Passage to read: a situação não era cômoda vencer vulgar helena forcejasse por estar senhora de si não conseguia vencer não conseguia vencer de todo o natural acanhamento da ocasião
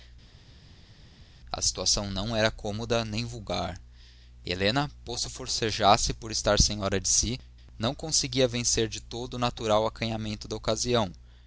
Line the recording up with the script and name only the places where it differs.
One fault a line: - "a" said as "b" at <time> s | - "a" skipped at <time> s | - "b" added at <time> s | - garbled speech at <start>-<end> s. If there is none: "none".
- "vencer" said as "nem" at 3.0 s
- "posto" added at 5.1 s
- "não conseguia vencer" skipped at 8.9 s